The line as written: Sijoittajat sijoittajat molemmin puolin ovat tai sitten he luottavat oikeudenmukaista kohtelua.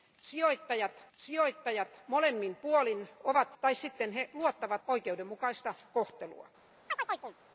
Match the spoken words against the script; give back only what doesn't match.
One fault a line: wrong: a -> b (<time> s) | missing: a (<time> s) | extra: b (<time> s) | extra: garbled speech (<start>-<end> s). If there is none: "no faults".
no faults